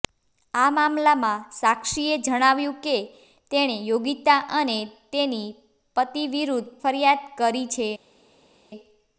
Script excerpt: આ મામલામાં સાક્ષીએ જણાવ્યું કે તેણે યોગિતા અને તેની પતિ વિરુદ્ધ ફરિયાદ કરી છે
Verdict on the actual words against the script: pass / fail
pass